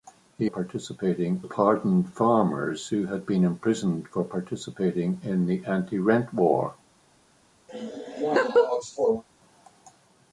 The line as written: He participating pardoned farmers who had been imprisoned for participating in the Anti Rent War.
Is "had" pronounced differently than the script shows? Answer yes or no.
no